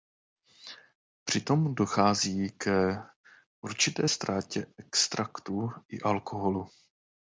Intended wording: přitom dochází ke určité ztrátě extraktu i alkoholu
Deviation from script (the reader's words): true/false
false